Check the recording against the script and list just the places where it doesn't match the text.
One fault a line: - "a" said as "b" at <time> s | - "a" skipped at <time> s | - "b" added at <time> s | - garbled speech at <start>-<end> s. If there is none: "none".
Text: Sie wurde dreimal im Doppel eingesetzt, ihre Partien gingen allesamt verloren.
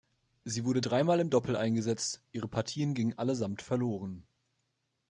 none